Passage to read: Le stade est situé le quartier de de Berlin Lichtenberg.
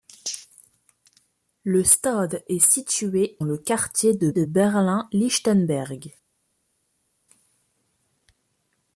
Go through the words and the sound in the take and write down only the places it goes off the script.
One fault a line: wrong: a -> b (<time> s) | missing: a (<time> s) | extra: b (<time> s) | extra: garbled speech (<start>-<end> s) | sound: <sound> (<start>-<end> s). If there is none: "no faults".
no faults